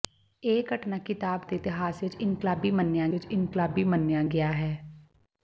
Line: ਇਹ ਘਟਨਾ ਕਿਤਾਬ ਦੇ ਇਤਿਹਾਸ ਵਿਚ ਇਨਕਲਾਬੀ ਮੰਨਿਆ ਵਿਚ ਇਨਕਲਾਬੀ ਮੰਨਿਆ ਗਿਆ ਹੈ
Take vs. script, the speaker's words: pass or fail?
pass